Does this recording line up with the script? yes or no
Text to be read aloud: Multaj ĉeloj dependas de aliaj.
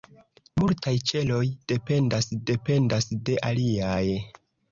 no